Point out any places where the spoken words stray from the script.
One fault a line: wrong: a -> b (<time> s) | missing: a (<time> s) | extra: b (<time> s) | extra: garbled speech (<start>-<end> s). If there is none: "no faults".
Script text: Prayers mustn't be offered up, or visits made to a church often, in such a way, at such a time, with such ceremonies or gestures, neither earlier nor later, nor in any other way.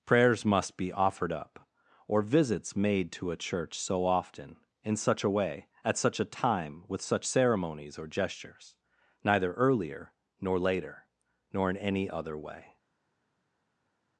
wrong: mustn't -> must (0.4 s)
extra: so (3.8 s)